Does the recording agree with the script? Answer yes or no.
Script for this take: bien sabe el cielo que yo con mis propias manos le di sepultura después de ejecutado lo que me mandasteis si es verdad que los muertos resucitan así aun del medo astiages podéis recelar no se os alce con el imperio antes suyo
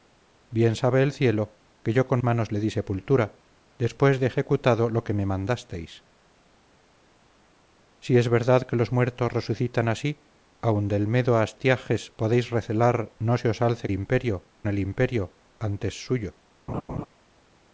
no